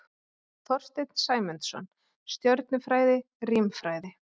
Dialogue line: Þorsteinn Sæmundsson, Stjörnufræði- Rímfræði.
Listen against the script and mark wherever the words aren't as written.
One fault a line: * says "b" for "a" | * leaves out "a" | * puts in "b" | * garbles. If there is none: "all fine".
all fine